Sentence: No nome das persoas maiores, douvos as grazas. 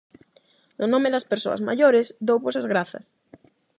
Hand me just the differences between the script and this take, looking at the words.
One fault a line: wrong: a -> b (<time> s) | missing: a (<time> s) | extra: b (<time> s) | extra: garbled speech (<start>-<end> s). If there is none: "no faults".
no faults